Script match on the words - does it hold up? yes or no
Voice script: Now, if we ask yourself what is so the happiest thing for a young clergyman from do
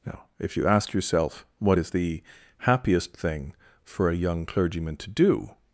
no